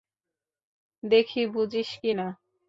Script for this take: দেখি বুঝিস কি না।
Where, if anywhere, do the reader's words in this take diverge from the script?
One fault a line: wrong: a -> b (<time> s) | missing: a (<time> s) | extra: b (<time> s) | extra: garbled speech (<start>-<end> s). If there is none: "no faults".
no faults